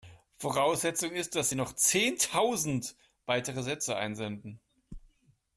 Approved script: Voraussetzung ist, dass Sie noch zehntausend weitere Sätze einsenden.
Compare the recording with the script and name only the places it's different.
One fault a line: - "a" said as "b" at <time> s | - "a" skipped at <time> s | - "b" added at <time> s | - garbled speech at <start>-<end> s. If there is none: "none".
none